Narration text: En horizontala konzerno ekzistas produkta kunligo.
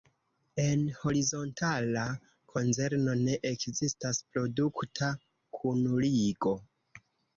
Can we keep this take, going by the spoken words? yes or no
no